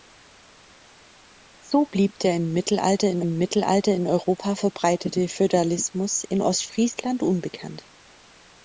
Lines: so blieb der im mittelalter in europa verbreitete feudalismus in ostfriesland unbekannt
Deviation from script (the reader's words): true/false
true